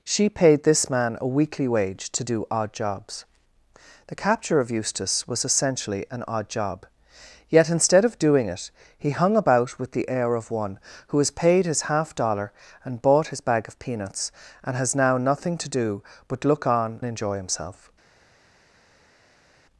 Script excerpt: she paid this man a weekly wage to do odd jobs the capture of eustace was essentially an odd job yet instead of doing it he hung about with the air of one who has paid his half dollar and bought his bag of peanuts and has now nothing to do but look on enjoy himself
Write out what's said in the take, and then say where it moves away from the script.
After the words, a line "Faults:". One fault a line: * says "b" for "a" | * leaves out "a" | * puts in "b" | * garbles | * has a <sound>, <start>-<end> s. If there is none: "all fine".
she paid this man a weekly wage to do odd jobs the capture of eustace was essentially an odd job yet instead of doing it he hung about with the air of one who has paid his half dollar and bought his bag of peanuts and has now nothing to do but look on enjoy himself
Faults:
all fine